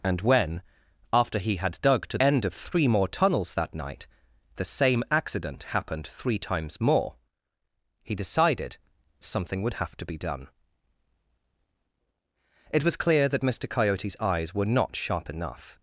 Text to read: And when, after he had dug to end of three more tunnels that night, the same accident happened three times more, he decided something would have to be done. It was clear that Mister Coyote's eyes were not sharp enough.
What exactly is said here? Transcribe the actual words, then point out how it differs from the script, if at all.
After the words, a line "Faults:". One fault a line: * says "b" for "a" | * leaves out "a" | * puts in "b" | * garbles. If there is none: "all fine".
And when, after he had dug to end of three more tunnels that night, the same accident happened three times more, he decided something would have to be done. It was clear that Mister Coyote's eyes were not sharp enough.
Faults:
all fine